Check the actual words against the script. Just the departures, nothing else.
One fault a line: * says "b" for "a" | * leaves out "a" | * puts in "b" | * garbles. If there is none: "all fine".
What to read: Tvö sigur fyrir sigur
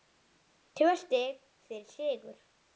* says "stig" for "sigur"